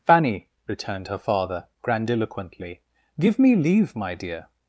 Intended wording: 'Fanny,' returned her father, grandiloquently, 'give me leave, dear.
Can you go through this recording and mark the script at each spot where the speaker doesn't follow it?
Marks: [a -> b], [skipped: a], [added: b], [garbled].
'Fanny,' returned her father, grandiloquently, 'give me leave, [added: my] dear.